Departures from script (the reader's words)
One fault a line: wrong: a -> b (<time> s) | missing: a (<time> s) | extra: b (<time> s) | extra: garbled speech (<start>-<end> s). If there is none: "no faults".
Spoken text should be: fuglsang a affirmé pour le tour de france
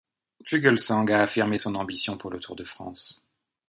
extra: son ambition (1.6 s)